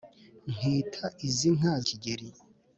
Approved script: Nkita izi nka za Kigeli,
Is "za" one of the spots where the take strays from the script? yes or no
yes